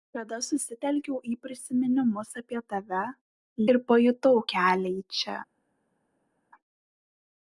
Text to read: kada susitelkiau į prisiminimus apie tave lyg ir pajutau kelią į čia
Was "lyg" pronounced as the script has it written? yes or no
no